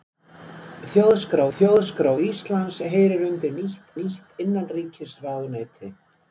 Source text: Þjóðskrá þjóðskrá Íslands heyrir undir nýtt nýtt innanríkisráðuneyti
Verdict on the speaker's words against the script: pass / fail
pass